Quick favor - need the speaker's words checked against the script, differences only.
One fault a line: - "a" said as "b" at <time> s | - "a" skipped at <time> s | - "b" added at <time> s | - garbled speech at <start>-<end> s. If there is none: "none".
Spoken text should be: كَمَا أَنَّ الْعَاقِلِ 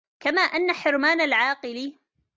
- "حِرْمَانَ" added at 0.7 s